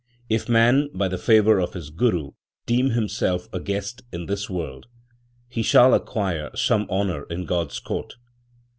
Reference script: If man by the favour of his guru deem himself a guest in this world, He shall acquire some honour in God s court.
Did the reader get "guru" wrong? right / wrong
right